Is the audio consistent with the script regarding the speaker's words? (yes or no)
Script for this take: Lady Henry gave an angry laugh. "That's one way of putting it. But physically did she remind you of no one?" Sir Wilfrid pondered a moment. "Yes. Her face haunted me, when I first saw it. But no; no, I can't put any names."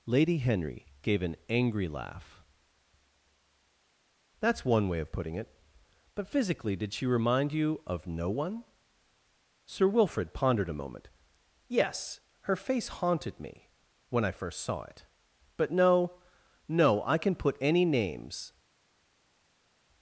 no